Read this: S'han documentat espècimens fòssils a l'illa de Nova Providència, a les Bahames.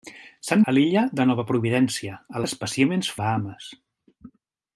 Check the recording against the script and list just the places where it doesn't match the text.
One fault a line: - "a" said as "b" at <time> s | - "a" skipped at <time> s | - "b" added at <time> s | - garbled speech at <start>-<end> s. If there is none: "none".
- "documentat espècimens fòssils" skipped at 0.6 s
- "les" said as "espècimens" at 2.5 s